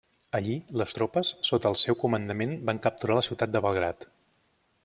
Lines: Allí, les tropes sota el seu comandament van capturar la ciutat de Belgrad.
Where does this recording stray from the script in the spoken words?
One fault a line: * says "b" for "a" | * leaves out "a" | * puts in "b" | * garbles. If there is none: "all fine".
all fine